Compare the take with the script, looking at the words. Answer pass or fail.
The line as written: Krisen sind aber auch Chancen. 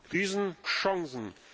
fail